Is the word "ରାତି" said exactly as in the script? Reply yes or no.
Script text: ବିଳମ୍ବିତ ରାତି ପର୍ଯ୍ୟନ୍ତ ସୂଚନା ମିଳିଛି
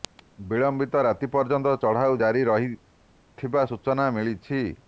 yes